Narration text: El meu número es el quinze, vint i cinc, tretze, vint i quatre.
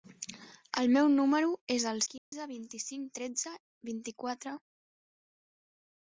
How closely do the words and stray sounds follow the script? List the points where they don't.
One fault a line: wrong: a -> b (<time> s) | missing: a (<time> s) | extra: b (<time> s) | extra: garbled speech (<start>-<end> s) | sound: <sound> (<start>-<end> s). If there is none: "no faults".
sound: dropout (2.2-2.3 s)